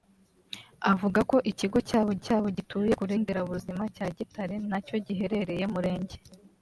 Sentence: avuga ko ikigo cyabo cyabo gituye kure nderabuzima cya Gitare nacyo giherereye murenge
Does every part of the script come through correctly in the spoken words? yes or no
yes